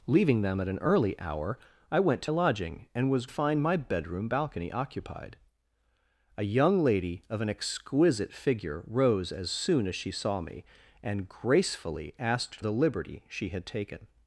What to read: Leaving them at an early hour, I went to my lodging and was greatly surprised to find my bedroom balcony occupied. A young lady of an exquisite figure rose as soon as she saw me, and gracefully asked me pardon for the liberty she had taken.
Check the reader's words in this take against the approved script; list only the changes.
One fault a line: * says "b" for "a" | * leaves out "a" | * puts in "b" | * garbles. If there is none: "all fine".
* leaves out "my"
* leaves out "greatly surprised to"
* leaves out "me pardon for"